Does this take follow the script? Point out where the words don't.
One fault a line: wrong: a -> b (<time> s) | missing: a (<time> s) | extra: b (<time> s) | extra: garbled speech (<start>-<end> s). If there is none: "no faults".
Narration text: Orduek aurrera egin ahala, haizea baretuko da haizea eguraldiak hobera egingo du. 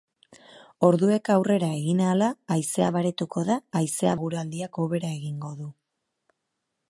no faults